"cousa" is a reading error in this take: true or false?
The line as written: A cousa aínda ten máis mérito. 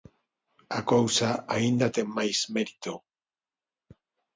false